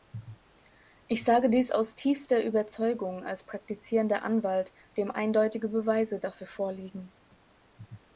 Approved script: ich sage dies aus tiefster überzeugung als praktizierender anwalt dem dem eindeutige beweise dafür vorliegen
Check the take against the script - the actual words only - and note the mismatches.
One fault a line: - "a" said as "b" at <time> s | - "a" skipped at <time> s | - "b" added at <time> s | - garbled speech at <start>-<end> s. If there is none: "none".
- "dem" skipped at 5.1 s